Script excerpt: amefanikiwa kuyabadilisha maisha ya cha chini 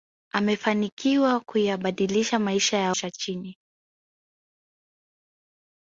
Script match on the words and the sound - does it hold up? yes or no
yes